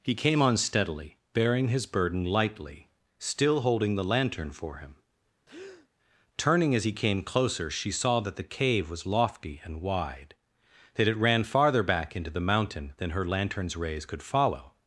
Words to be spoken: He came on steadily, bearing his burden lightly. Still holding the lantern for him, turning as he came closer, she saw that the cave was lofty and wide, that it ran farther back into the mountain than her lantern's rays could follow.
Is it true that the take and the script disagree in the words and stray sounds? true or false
true